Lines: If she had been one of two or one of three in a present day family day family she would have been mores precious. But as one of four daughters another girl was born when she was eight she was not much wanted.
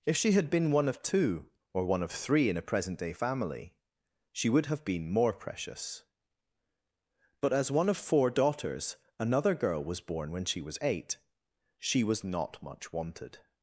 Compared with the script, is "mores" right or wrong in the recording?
wrong